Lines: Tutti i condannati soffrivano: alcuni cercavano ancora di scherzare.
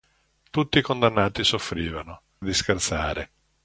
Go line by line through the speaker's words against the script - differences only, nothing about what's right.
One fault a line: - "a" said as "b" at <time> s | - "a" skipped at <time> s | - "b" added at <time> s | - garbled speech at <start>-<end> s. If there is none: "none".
- "alcuni cercavano ancora" skipped at 2.2 s